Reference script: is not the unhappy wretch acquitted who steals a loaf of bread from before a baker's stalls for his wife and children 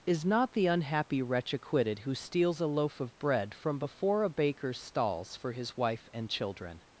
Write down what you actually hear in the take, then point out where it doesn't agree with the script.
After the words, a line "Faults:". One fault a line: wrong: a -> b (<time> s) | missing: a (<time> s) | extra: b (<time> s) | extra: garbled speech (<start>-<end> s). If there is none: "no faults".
is not the unhappy wretch acquitted who steals a loaf of bread from before a baker's stalls for his wife and children
Faults:
no faults